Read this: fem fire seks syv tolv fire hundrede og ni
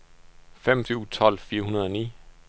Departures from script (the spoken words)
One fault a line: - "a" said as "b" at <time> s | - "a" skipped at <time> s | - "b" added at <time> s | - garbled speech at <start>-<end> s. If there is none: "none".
- "fire seks" skipped at 0.8 s